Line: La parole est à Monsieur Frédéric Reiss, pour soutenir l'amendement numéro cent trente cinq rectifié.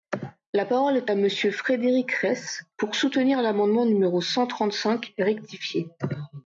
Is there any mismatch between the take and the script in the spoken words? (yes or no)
no